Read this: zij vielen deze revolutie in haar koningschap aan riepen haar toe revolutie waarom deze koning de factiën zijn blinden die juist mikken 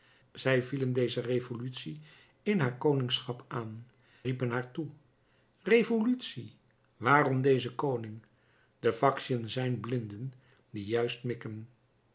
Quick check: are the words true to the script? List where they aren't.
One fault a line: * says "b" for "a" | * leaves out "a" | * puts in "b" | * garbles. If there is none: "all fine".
all fine